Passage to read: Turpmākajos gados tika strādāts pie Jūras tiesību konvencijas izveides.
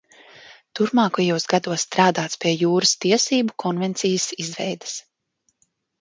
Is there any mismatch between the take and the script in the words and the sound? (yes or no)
yes